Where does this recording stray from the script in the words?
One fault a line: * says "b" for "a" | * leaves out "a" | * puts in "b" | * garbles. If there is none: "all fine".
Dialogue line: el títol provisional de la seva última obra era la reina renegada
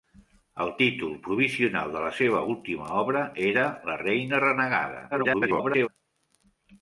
* garbles